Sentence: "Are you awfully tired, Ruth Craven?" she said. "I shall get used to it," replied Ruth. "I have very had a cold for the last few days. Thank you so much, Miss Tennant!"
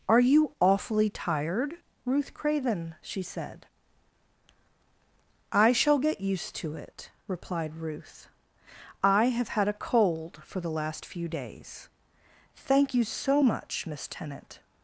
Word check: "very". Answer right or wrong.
wrong